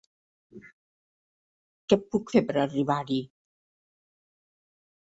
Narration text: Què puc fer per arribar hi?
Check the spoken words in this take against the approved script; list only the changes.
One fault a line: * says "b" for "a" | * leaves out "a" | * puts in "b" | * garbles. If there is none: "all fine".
all fine